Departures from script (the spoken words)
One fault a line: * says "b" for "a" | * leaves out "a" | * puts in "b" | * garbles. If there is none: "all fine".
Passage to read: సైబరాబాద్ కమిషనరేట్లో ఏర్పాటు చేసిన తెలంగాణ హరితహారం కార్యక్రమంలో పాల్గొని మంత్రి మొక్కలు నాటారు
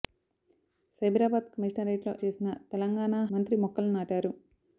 * leaves out "ఏర్పాటు"
* leaves out "హరితహారం కార్యక్రమంలో పాల్గొని"